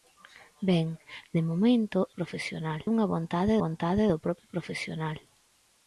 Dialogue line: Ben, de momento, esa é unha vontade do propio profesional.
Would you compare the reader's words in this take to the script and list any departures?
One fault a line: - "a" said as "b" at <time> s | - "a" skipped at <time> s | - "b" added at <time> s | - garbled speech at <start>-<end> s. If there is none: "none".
- "esa" said as "profesional" at 2.2 s
- "vontade" added at 3.6 s